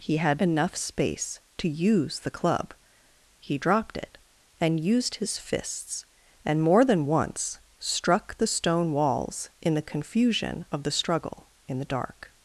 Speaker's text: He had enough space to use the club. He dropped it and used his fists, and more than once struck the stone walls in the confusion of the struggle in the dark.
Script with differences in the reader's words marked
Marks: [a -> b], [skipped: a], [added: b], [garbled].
He had enough space to use the club. He dropped it and used his fists, and more than once struck the stone walls in the confusion of the struggle in the dark.